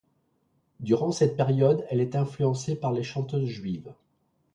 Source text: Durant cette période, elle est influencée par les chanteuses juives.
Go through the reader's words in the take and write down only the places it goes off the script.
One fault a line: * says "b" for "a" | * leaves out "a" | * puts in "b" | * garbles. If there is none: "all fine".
all fine